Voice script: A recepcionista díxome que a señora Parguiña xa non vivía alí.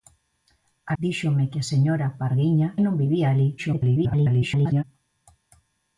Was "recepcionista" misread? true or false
true